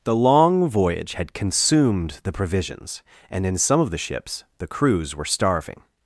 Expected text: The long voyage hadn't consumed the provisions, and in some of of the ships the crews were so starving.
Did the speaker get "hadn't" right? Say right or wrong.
wrong